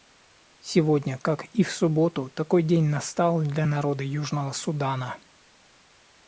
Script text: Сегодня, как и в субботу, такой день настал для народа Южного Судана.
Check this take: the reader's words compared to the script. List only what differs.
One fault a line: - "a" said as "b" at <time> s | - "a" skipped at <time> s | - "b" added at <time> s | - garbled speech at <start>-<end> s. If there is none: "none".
none